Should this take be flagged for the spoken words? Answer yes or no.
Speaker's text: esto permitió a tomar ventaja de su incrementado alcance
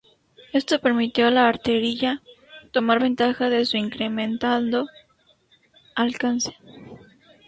yes